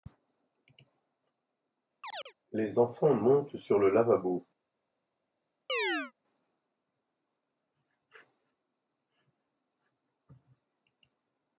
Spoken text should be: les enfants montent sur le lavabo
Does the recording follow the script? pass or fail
pass